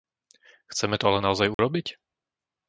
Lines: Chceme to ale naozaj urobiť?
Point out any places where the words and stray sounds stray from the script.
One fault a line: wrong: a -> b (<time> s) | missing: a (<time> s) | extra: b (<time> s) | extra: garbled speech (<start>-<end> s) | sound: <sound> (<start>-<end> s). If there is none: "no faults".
sound: dropout (1.5-1.6 s)